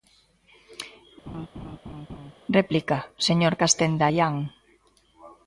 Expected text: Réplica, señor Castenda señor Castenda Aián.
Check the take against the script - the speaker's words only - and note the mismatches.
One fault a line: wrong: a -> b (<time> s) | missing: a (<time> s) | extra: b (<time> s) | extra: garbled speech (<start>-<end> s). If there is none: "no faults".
missing: señor Castenda (4.0 s)